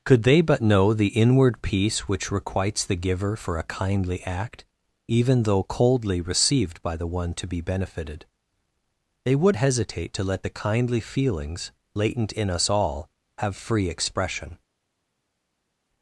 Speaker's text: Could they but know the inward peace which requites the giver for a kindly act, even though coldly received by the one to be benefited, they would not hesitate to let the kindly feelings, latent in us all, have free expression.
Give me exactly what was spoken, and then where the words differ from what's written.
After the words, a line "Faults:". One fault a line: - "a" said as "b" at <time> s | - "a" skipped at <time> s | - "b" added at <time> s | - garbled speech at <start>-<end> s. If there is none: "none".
Could they but know the inward peace which requites the giver for a kindly act, even though coldly received by the one to be benefited, they would hesitate to let the kindly feelings, latent in us all, have free expression.
Faults:
- "not" skipped at 9.6 s